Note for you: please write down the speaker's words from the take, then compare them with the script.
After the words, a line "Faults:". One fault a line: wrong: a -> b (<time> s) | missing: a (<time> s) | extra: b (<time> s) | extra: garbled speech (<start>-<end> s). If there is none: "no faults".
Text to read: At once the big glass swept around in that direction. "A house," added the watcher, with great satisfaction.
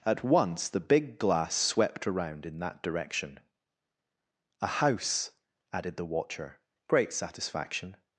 At once the big glass swept around in that direction. "A house," added the watcher, great satisfaction.
Faults:
missing: with (6.6 s)